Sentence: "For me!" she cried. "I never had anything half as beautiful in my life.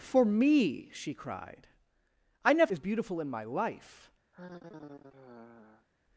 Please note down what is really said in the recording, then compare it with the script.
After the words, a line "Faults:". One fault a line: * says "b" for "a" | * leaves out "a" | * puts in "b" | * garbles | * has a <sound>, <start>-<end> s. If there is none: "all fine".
"For me!" she cried. "I never as beautiful in my life.
Faults:
* leaves out "had anything half"
* has a sigh, 4.3-5.9 s